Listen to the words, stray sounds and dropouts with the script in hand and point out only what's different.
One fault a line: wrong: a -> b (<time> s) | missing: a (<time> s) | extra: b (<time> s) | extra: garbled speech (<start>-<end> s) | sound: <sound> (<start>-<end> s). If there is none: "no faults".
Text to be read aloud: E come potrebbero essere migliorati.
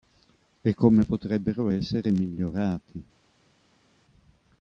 no faults